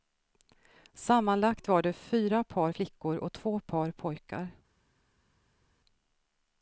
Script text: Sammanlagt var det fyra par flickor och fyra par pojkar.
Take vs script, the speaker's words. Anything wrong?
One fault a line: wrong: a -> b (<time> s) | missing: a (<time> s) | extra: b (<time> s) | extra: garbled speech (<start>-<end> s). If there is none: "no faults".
wrong: fyra -> två (3.3 s)